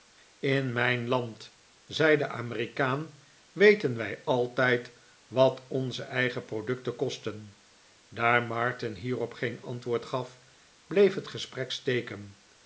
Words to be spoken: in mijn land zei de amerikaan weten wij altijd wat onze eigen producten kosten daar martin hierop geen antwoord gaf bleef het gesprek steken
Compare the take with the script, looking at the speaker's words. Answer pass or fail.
pass